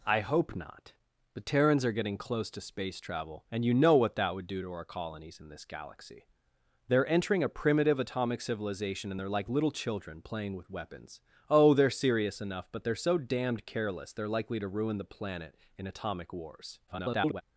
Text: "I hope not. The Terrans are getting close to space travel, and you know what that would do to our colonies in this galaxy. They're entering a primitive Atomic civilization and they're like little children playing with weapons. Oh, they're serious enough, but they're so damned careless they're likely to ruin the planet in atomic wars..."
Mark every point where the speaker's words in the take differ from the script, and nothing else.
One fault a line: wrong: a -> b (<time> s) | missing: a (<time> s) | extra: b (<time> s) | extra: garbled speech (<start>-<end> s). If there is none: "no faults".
extra: garbled speech (16.9-17.4 s)